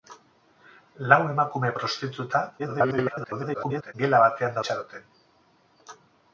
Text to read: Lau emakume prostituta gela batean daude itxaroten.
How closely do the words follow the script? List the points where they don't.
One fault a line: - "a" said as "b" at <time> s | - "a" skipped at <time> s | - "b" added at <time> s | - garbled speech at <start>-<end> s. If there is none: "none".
- garbled speech at 2.6-3.9 s
- "daude" skipped at 4.6 s